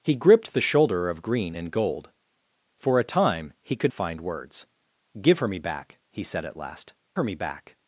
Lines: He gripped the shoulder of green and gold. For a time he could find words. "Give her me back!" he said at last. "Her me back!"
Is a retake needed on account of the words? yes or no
no